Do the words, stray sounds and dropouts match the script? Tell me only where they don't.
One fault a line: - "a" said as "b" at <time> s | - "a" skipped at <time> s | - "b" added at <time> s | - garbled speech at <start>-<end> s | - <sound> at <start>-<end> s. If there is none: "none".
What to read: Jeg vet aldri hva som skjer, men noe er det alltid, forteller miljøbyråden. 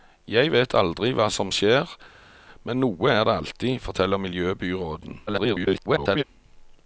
- garbled speech at 5.3-6.2 s